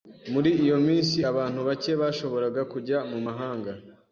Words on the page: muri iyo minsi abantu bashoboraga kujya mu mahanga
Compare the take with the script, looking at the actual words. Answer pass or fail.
fail